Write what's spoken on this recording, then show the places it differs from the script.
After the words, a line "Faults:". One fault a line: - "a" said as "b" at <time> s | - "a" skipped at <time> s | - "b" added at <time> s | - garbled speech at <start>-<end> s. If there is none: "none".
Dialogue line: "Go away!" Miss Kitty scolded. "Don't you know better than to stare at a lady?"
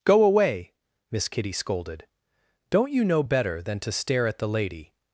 "Go away!" Miss Kitty scolded. "Don't you know better than to stare at the lady?"
Faults:
- "a" said as "the" at 4.4 s